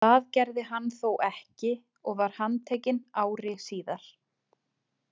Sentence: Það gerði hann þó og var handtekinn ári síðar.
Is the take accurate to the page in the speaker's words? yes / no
no